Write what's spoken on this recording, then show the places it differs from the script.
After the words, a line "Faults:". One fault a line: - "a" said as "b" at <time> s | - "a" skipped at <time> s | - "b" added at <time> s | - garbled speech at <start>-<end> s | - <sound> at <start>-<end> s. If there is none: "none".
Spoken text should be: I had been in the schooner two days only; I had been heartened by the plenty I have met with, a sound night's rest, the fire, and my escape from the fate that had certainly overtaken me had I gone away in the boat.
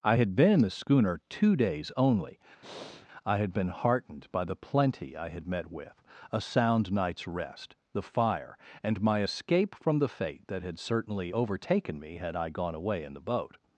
I had been in the schooner two days only; I had been heartened by the plenty I had met with, a sound night's rest, the fire, and my escape from the fate that had certainly overtaken me had I gone away in the boat.
Faults:
- breath at 2.6-3.1 s
- "have" said as "had" at 5.3 s